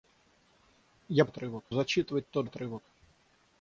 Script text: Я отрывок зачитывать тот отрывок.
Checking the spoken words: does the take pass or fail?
pass